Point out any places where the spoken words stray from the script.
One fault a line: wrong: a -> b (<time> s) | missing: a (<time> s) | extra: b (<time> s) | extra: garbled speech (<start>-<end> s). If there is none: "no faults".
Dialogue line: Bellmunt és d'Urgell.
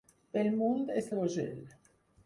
no faults